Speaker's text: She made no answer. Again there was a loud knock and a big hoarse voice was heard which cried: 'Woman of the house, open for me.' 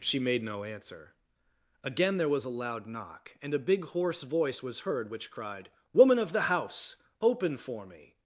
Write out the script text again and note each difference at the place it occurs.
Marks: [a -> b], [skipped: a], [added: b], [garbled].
She made no answer. Again there was a loud knock and a big hoarse voice was heard which cried: 'Woman of the house, open for me.'